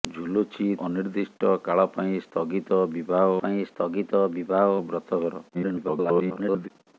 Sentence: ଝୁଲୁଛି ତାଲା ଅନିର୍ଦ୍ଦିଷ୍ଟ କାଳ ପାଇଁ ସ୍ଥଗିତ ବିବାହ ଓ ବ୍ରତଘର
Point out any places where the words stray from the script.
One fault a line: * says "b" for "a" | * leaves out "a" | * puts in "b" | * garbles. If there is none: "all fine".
* leaves out "ତାଲା"
* puts in "ପାଇଁ ସ୍ଥଗିତ ବିବାହ"
* garbles